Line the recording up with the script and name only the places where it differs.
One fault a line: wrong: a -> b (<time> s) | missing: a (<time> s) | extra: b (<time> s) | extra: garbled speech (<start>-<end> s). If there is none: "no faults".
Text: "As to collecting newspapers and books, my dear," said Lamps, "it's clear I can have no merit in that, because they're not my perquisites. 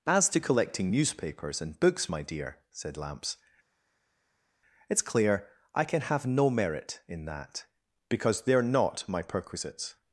no faults